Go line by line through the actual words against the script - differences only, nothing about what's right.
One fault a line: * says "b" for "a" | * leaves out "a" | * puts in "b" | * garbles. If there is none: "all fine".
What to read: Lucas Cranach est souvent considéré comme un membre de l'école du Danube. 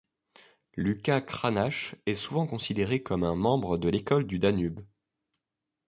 all fine